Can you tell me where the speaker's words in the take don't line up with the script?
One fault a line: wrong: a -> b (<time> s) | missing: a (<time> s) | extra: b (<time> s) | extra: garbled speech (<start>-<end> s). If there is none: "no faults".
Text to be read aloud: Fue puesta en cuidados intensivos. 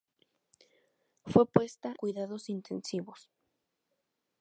missing: en (1.9 s)